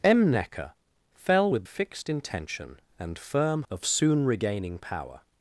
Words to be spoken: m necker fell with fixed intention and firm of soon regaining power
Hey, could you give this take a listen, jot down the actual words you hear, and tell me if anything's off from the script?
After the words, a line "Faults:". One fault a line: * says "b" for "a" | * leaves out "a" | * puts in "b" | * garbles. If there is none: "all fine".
m necker fell with fixed intention and firm of soon regaining power
Faults:
all fine